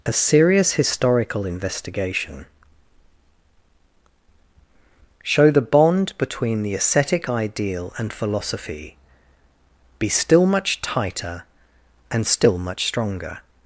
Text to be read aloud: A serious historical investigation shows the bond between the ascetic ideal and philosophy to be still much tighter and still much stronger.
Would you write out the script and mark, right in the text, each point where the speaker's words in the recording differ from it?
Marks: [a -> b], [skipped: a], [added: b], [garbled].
A serious historical investigation [shows -> show] the bond between the ascetic ideal and philosophy [skipped: to] be still much tighter and still much stronger.